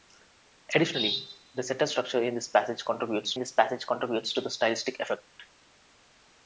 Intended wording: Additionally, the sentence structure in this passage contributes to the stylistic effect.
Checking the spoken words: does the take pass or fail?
fail